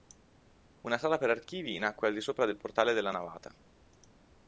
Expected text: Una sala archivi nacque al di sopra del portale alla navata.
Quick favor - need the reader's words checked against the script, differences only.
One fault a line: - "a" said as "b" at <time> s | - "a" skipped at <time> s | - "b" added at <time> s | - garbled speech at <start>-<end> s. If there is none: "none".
- "per" added at 1.2 s
- "alla" said as "della" at 2.9 s